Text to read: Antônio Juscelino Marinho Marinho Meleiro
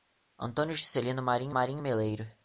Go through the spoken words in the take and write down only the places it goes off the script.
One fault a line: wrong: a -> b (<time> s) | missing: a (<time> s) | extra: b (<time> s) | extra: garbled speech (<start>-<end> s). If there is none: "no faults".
no faults